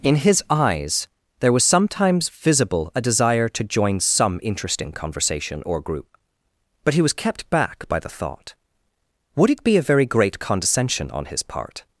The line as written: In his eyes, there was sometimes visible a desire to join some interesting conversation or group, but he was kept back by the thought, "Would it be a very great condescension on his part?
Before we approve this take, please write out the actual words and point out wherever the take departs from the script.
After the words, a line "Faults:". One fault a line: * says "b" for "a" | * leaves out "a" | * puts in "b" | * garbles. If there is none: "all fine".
In his eyes, there was sometimes visible a desire to join some interesting conversation or group, but he was kept back by the thought, "Would it be a very great condescension on his part?
Faults:
all fine